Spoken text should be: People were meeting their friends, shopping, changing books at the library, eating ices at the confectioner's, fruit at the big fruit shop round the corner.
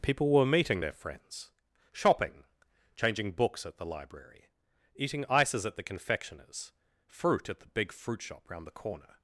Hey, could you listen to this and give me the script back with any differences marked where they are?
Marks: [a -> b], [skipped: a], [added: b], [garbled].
People were meeting their friends, shopping, changing books at the library, eating ices at the confectioner's, fruit at the big fruit shop round the corner.